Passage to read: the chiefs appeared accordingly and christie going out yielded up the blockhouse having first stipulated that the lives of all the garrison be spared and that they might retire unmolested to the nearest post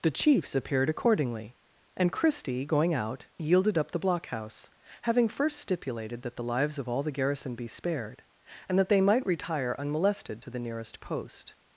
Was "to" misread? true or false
false